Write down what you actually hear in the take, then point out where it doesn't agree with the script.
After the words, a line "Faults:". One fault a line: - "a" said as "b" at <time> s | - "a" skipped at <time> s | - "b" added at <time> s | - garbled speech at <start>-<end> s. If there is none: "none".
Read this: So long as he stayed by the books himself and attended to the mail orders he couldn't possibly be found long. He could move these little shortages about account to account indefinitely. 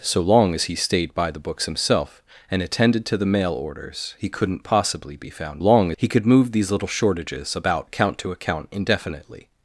So long as he stayed by the books himself and attended to the mail orders he couldn't possibly be found long. He could move these little shortages about account to account indefinitely.
Faults:
none